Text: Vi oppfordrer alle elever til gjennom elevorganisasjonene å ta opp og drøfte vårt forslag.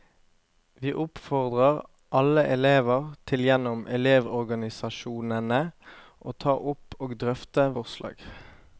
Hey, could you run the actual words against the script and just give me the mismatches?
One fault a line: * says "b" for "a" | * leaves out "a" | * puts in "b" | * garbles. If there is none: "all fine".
* leaves out "vårt"